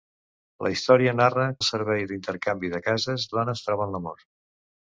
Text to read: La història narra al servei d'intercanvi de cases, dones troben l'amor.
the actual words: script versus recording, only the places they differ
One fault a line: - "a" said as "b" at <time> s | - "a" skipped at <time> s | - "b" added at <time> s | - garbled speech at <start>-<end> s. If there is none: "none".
none